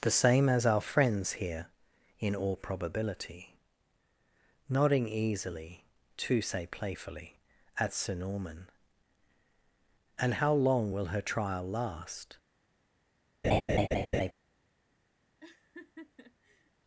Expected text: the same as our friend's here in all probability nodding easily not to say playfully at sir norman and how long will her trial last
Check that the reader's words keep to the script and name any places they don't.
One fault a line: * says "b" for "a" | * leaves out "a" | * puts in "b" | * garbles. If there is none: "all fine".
* leaves out "not"